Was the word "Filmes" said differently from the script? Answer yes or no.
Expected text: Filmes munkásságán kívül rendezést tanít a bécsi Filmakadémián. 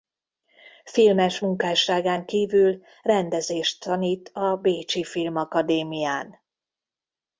no